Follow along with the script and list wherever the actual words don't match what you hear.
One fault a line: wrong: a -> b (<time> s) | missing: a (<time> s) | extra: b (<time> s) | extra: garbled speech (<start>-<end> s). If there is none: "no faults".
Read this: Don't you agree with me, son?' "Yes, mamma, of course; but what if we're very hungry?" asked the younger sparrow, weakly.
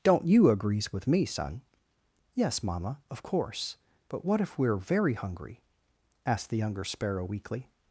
wrong: agree -> agrees (0.5 s)